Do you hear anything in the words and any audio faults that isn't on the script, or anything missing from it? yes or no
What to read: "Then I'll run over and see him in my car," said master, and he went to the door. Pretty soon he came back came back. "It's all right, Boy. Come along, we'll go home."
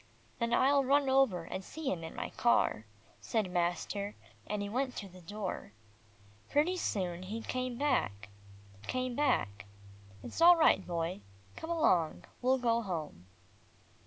no